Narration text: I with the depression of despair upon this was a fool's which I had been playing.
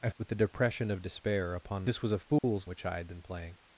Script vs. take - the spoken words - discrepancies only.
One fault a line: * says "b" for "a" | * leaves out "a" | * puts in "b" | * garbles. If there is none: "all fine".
all fine